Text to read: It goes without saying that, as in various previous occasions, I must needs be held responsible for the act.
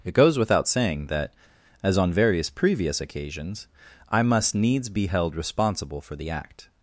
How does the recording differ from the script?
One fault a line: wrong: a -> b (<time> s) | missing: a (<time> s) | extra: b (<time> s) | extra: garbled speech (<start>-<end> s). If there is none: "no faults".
wrong: in -> on (2.0 s)